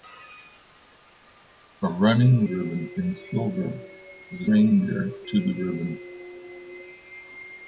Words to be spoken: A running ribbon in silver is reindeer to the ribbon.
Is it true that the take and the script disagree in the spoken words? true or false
false